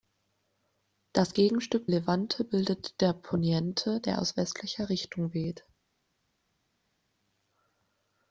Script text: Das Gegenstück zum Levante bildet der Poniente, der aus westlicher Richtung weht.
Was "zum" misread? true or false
true